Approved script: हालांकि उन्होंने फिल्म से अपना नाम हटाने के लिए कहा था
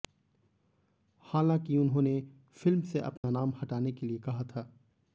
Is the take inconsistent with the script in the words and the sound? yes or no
yes